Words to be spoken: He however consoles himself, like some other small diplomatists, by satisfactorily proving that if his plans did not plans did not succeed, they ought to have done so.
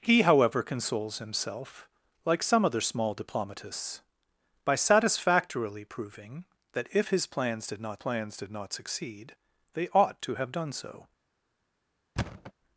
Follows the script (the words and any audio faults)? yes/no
no